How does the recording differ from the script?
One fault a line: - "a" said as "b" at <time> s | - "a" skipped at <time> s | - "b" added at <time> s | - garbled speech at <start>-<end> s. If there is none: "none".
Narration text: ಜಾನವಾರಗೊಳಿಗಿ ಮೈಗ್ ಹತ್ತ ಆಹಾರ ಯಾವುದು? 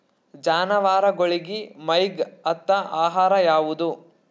none